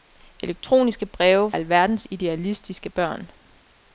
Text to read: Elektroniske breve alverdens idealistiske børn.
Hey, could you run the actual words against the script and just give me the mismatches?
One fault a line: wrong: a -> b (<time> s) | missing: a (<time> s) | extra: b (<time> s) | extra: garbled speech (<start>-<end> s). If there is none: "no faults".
no faults